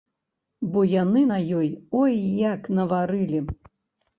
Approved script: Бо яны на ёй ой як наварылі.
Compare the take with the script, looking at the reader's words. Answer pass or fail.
pass